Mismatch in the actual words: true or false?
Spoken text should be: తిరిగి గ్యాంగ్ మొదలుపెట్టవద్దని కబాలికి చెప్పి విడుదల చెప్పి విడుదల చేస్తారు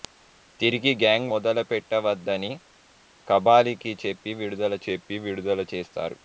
false